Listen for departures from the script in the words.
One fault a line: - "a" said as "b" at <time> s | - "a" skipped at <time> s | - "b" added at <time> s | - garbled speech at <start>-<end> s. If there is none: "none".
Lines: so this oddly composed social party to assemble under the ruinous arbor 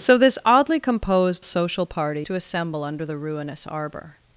none